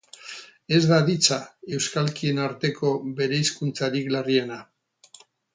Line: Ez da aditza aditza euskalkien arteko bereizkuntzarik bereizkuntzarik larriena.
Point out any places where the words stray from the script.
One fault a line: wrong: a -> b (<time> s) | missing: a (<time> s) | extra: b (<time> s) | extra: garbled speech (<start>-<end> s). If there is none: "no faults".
missing: aditza (1.4 s)
missing: bereizkuntzarik (4.1 s)